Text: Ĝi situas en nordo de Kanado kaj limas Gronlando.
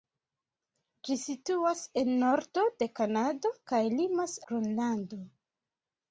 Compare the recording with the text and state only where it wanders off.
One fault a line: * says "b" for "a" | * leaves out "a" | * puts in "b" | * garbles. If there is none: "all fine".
all fine